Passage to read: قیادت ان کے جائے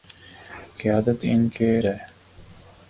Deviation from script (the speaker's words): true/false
false